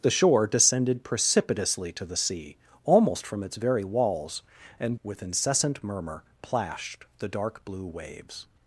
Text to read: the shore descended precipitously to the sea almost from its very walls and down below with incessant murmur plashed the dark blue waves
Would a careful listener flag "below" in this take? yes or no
yes